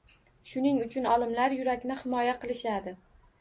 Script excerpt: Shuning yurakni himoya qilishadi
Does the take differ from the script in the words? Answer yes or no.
yes